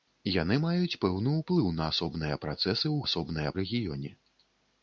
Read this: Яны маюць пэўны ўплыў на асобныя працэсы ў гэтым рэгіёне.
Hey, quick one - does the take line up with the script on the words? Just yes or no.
no